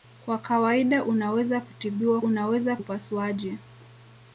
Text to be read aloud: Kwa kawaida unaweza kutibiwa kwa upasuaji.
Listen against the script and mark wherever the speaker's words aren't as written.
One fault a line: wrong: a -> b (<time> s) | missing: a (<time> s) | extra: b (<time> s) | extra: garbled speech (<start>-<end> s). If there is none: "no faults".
wrong: kwa -> unaweza (2.2 s)